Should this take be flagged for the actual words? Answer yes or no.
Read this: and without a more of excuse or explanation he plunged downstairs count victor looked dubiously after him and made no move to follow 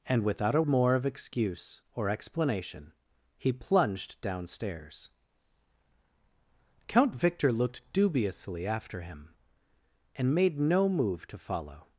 no